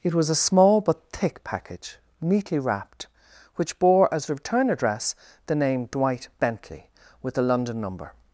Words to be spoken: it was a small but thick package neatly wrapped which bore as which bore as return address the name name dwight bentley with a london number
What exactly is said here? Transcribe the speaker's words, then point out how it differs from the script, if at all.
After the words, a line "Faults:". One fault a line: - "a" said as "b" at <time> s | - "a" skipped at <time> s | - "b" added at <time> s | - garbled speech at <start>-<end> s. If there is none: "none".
it was a small but thick package neatly wrapped which bore as return address the name dwight bentley with a london number
Faults:
- "which bore as" skipped at 4.3 s
- "name" skipped at 5.8 s